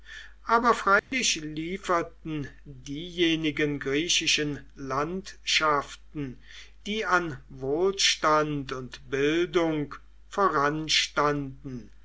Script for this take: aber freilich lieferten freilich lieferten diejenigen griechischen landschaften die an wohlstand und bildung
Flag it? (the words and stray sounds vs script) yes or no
yes